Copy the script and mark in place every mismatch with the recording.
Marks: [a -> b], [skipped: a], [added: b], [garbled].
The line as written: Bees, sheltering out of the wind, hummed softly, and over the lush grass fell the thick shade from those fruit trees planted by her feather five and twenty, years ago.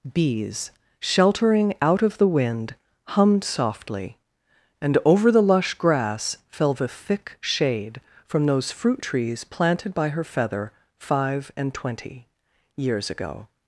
Bees, sheltering out of the wind, hummed softly, and over the lush grass fell the thick shade from those fruit trees planted by her feather five and twenty, years ago.